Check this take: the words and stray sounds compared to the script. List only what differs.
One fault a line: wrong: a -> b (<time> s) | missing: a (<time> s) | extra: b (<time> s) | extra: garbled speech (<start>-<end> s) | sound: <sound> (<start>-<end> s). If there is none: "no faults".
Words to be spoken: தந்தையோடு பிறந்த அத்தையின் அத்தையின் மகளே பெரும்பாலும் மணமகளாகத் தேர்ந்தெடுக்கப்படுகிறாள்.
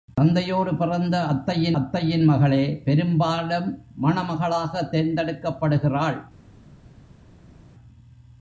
no faults